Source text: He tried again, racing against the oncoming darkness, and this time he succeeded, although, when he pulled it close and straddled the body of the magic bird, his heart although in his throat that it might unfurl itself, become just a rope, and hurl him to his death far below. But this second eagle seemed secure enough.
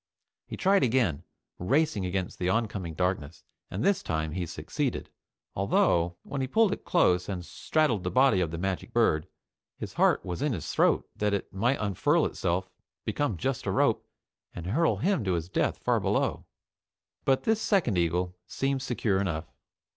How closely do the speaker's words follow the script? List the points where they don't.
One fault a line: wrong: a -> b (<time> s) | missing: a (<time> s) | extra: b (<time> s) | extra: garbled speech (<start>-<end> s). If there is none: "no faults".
wrong: although -> was (10.2 s)